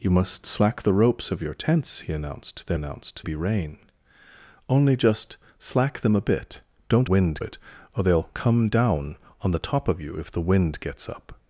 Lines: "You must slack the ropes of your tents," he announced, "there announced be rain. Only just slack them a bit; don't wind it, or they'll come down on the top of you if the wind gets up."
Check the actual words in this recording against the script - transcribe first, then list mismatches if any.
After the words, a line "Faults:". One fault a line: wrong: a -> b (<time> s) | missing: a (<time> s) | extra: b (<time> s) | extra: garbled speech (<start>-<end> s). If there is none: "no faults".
"You must slack the ropes of your tents," he announced, "there announced be rain. Only just slack them a bit; don't wind it, or they'll come down on the top of you if the wind gets up."
Faults:
no faults